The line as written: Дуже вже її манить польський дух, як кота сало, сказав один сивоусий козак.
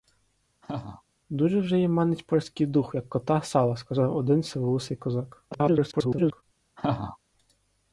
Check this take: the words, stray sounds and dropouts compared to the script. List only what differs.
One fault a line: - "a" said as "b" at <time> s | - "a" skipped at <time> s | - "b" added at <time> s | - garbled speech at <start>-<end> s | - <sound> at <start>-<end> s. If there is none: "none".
- laugh at 0.6-1.0 s
- garbled speech at 5.5-6.4 s
- laugh at 6.8-7.2 s